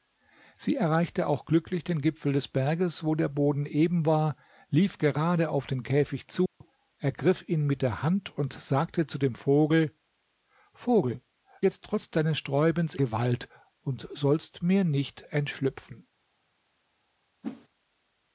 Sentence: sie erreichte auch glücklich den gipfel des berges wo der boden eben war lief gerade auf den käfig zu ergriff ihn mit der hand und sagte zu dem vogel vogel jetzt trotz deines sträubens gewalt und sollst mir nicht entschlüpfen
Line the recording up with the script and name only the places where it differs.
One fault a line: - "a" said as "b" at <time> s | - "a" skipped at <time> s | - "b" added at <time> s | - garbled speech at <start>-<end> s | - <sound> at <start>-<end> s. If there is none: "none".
- dropout at 6.5-6.6 s
- whoosh at 17.4-17.7 s